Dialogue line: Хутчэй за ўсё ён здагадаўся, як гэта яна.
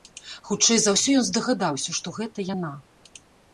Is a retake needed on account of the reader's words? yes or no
yes